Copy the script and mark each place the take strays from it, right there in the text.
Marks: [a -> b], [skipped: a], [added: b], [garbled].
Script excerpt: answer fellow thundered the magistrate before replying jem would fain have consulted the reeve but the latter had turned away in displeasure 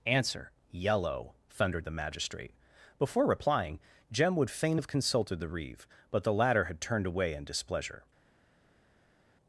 answer [fellow -> yellow] thundered the magistrate before replying jem would fain have consulted the reeve but the latter had turned away in displeasure